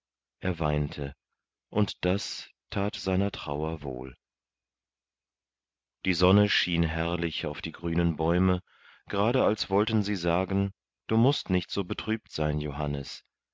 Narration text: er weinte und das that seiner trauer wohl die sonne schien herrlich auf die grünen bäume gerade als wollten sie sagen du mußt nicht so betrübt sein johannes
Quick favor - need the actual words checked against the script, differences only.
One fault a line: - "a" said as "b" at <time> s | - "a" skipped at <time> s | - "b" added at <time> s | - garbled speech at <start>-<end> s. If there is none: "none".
none